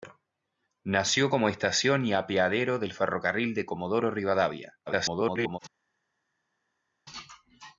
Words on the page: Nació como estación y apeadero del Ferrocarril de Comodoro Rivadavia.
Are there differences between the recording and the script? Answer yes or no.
yes